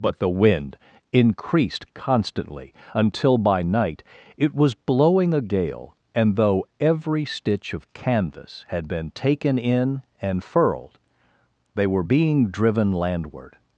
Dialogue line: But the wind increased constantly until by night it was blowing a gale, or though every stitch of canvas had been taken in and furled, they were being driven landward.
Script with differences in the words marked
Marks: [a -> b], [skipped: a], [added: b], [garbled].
But the wind increased constantly until by night it was blowing a gale, [or -> and] though every stitch of canvas had been taken in and furled, they were being driven landward.